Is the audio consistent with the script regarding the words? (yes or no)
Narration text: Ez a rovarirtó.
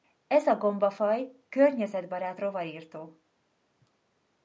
no